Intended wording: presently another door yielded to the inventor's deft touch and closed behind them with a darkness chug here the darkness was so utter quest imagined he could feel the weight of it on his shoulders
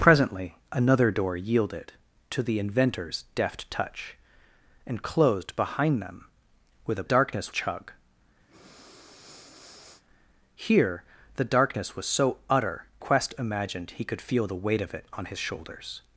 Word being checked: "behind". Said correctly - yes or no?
yes